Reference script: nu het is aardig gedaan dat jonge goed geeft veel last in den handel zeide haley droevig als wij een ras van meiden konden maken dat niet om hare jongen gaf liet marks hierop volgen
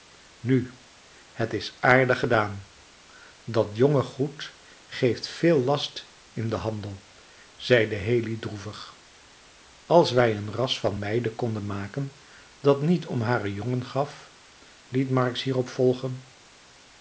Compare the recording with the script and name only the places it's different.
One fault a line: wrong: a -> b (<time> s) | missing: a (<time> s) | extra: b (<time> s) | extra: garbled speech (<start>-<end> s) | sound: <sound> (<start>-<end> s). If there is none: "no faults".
no faults